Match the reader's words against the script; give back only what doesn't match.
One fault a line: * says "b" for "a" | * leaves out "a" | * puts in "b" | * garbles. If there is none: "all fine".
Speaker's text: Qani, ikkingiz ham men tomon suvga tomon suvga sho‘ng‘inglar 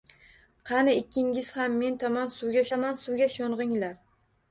all fine